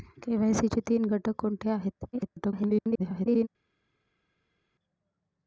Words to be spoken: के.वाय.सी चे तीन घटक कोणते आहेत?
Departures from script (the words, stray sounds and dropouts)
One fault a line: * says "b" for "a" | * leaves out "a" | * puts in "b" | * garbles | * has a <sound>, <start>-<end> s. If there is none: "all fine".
* garbles